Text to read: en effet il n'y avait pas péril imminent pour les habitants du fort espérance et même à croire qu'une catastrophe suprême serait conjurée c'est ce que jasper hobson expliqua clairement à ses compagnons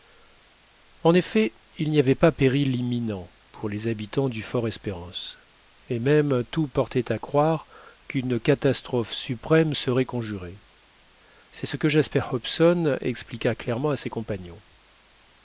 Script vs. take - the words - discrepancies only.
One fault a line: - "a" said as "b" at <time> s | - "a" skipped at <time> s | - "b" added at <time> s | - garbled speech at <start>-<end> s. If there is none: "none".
- "tout portait" added at 6.5 s